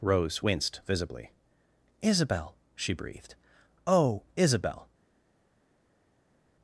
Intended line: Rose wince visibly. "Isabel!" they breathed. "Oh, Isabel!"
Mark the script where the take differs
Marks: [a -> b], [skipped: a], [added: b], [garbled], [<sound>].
Rose [wince -> winced] visibly. "Isabel!" [they -> she] breathed. "Oh, Isabel!"